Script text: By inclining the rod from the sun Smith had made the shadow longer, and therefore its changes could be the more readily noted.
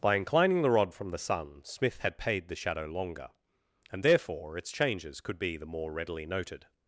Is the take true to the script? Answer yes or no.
no